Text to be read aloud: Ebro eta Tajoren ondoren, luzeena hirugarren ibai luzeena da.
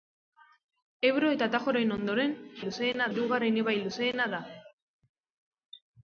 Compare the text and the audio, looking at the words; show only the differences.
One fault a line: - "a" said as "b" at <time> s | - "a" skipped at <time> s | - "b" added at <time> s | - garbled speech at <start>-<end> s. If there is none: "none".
none